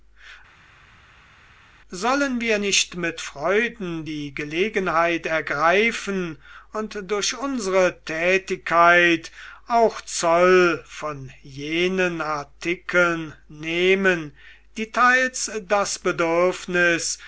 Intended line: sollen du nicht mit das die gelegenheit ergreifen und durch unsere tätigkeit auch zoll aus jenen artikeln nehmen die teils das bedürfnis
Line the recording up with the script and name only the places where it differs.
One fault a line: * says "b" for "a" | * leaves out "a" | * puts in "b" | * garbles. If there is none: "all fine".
* says "wir" for "du"
* says "freuden" for "das"
* says "von" for "aus"